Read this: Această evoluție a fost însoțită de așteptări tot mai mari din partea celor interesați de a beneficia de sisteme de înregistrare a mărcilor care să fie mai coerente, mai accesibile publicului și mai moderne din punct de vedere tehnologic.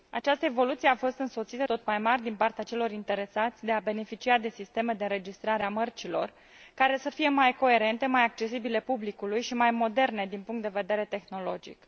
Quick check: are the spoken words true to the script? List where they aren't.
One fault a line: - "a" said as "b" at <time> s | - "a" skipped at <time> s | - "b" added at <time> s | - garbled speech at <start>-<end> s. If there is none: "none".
- "de așteptări" skipped at 1.7 s